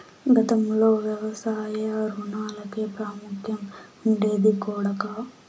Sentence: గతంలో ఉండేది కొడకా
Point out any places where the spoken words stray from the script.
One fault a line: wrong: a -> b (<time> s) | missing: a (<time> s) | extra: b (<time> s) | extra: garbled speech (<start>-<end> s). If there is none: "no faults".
extra: వ్యవసాయ రుణాలకే ప్రాముఖ్యం (1.0 s)